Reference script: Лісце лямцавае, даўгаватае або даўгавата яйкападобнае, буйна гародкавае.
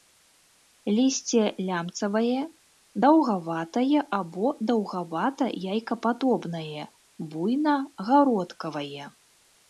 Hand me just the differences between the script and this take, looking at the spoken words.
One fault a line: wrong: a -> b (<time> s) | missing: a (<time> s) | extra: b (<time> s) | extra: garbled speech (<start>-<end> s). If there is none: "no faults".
no faults